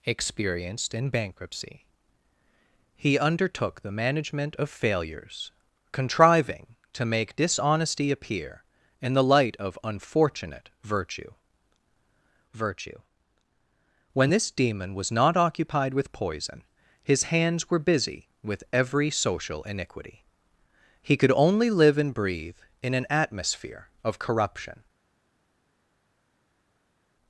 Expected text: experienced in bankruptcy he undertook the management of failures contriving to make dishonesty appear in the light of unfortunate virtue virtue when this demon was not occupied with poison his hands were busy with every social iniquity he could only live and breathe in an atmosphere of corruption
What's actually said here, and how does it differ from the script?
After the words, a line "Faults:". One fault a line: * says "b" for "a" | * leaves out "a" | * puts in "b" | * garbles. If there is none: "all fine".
experienced in bankruptcy he undertook the management of failures contriving to make dishonesty appear in the light of unfortunate virtue virtue when this demon was not occupied with poison his hands were busy with every social iniquity he could only live and breathe in an atmosphere of corruption
Faults:
all fine